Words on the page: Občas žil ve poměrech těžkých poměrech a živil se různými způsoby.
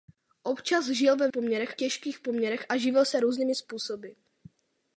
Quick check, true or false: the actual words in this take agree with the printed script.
true